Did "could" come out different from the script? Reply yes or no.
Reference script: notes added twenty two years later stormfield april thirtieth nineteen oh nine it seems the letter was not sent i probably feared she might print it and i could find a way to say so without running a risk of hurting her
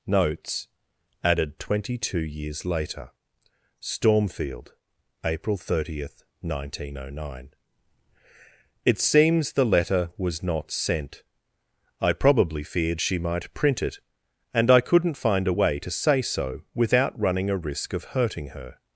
yes